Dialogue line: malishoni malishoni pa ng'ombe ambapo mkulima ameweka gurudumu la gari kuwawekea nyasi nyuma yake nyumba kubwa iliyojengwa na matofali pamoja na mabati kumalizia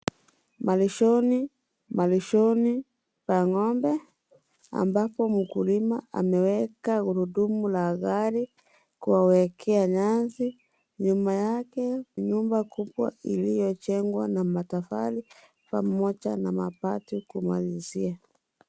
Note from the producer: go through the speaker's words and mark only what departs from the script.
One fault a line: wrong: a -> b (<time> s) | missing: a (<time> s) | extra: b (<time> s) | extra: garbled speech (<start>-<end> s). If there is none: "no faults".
no faults